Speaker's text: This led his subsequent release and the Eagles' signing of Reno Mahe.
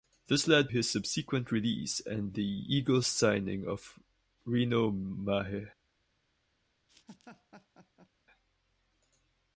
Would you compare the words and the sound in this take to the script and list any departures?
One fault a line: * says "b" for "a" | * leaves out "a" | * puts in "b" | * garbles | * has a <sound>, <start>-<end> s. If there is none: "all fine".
* has a laugh, 6.9-8.1 s